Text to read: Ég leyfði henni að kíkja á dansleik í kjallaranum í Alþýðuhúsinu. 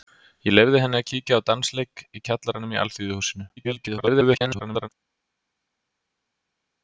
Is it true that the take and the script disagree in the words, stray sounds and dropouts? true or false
true